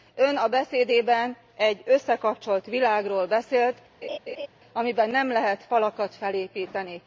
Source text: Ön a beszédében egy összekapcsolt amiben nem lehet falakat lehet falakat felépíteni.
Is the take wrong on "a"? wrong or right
right